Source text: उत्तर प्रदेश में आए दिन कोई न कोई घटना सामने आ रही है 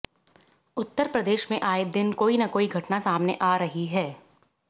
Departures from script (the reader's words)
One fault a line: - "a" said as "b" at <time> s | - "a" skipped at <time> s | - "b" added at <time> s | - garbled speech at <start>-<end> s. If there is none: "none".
none